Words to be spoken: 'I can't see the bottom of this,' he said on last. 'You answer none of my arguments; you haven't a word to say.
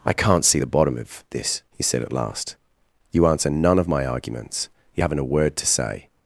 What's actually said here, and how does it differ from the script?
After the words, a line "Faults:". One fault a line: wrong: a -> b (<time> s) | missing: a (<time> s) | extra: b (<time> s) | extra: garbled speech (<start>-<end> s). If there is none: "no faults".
'I can't see the bottom of this,' he said at last. 'You answer none of my arguments; you haven't a word to say.
Faults:
wrong: on -> at (2.0 s)